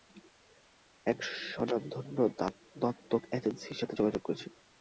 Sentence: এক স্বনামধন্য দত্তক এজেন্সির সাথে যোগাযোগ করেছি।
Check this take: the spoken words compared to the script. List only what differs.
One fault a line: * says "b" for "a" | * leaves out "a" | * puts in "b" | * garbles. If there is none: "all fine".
all fine